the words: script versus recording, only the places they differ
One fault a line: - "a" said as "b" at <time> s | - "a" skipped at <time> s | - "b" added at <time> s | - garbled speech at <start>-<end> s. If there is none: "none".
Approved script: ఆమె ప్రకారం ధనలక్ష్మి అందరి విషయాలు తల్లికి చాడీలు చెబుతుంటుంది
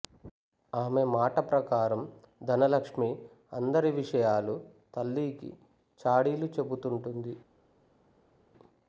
- "మాట" added at 1.1 s